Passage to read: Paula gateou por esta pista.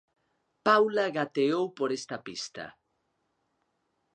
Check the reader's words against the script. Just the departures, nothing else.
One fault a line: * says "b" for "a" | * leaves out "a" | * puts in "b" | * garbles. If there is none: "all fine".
all fine